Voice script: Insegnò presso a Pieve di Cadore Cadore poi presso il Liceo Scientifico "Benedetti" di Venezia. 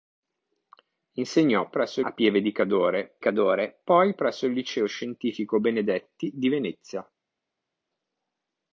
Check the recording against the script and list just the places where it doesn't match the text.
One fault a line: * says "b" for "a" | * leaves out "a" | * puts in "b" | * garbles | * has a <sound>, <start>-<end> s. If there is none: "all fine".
all fine